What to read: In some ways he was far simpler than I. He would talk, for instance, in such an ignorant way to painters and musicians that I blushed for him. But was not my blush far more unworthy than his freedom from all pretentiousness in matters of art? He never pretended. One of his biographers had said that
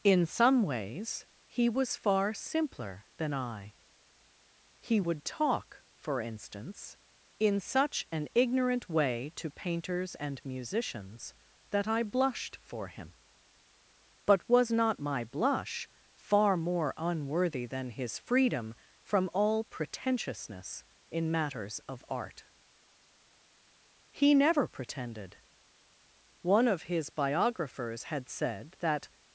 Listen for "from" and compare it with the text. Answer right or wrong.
right